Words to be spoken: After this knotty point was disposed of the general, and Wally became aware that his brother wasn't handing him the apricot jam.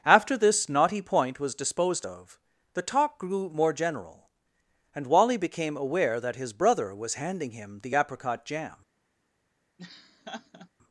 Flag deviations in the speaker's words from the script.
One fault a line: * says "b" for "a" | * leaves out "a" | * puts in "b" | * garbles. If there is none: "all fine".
* puts in "talk grew more"
* says "was" for "wasn't"